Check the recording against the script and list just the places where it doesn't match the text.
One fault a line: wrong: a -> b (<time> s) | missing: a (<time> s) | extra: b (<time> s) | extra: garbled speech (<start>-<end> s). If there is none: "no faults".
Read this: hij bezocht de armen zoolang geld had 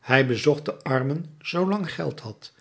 no faults